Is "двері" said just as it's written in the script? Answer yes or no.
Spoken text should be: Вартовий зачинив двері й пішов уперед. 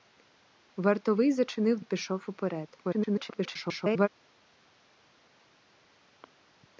no